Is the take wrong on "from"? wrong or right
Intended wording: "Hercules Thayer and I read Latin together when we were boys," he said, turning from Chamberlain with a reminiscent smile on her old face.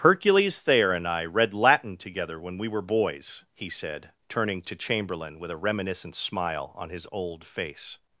wrong